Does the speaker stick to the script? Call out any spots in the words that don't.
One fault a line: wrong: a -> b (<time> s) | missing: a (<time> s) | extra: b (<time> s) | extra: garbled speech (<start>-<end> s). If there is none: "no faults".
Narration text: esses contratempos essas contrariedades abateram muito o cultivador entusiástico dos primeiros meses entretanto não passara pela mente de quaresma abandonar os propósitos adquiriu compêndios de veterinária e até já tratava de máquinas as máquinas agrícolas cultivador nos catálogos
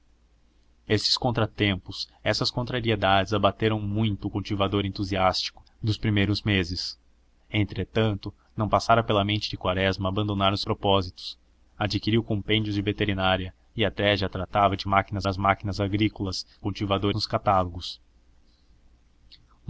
no faults